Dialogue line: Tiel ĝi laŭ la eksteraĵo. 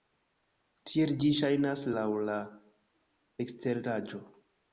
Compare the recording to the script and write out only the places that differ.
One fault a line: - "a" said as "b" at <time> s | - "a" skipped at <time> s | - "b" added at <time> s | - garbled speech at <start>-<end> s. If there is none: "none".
- "ŝajnas" added at 1.4 s